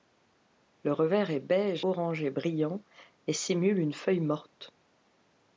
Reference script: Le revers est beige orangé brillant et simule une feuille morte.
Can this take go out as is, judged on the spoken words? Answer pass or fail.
pass